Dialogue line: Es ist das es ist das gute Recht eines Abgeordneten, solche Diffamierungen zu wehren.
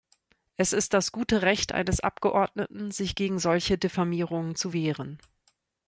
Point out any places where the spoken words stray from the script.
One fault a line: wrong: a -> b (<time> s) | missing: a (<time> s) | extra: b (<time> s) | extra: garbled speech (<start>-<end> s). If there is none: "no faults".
missing: es ist das (1.1 s)
extra: sich gegen (2.9 s)